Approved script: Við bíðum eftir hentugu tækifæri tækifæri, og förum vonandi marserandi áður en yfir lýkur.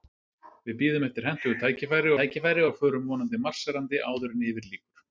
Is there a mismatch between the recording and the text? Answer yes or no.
no